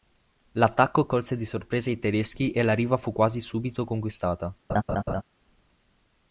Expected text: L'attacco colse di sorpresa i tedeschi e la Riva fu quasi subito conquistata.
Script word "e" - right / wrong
right